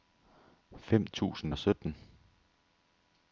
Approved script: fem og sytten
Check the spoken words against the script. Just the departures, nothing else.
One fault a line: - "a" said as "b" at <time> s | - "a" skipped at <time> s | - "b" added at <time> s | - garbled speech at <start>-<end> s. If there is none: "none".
- "tusind" added at 1.1 s